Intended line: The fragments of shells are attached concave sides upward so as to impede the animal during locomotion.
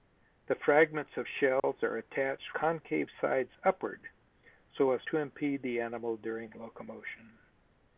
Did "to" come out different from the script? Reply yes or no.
no